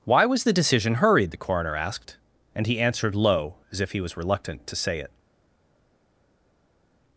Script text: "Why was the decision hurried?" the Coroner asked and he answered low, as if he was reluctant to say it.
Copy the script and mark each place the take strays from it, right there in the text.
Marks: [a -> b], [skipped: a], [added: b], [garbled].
"Why was the decision hurried?" the Coroner asked and he answered low, as if he was reluctant to say it.